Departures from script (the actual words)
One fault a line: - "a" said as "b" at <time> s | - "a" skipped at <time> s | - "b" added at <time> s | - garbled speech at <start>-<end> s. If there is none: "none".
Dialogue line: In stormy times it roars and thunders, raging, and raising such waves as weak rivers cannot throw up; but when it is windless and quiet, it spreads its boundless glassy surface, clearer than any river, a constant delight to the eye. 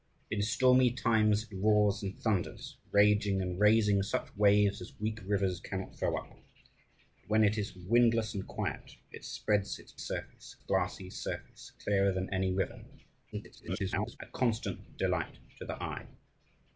- "boundless" said as "surface" at 10.0 s
- garbled speech at 13.3-14.2 s